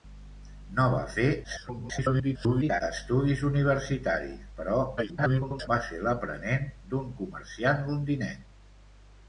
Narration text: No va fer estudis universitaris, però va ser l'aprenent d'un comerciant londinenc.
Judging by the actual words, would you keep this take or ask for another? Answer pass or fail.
fail